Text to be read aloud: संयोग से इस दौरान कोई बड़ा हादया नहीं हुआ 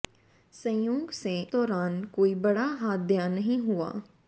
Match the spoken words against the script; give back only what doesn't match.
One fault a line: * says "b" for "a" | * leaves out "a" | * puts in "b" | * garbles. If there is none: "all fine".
* leaves out "इस"